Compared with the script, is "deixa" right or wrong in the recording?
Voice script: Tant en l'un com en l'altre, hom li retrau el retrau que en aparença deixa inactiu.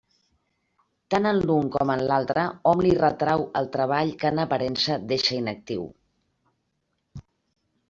right